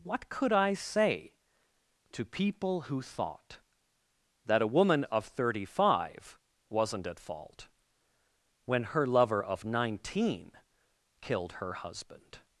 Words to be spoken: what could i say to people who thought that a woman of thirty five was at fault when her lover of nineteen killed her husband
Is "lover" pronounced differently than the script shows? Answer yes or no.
no